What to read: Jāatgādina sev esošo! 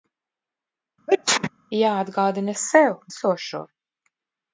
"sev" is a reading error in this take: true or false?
false